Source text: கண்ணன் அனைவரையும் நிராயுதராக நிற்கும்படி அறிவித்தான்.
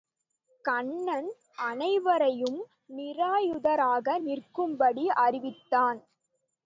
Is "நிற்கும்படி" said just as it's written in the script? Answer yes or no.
yes